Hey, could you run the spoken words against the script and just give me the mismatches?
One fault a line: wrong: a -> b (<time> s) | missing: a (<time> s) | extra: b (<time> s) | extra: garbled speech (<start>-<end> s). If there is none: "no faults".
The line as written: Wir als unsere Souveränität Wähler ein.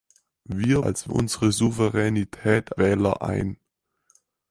no faults